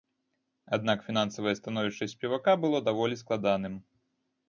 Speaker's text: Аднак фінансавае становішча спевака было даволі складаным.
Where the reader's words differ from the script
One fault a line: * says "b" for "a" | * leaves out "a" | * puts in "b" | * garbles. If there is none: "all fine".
all fine